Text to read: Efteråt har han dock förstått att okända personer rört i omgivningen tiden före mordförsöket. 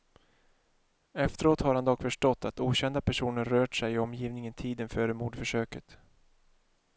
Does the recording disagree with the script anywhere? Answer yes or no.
yes